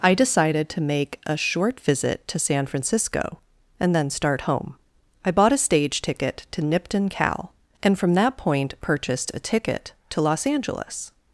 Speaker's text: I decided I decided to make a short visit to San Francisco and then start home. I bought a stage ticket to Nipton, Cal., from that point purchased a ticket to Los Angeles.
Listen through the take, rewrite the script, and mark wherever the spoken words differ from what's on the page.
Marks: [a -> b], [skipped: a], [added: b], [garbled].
I decided [skipped: I decided] to make a short visit to San Francisco and then start home. I bought a stage ticket to Nipton, Cal., [added: and] from that point purchased a ticket to Los Angeles.